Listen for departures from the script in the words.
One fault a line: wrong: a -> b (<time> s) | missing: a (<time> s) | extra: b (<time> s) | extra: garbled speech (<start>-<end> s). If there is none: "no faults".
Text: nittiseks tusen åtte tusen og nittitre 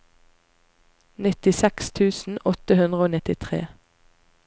wrong: tusen -> hundre (2.8 s)